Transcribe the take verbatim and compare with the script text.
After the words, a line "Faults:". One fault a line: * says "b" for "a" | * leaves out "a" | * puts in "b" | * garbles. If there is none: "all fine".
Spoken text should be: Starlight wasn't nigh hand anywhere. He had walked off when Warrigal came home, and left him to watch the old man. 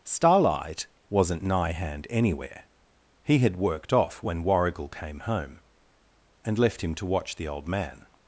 Starlight wasn't nigh hand anywhere. He had worked off when Warrigal came home, and left him to watch the old man.
Faults:
* says "worked" for "walked"